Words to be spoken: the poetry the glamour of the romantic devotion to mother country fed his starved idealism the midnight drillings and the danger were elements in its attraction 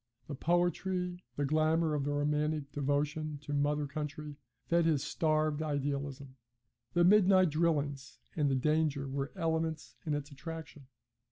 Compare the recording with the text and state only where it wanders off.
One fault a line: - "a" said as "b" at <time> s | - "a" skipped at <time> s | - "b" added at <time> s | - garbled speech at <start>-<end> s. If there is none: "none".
none